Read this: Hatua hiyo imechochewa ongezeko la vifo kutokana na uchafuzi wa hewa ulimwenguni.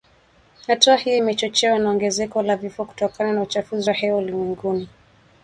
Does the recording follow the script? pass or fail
fail